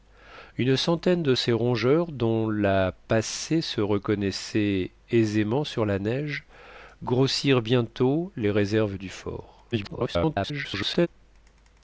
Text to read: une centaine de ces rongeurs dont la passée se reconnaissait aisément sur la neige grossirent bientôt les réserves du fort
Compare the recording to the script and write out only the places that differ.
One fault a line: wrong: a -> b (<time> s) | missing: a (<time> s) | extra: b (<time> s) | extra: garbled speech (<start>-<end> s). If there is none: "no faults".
extra: garbled speech (9.7-11.1 s)